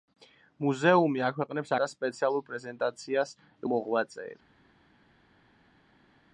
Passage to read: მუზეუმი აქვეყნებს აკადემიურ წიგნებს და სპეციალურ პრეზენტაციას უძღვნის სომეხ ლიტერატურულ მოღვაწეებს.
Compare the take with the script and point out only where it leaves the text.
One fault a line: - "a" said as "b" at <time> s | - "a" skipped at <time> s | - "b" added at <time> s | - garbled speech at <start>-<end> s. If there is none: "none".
- "აკადემიურ წიგნებს" skipped at 1.7 s
- "უძღვნის სომეხ ლიტერატურულ" skipped at 3.4 s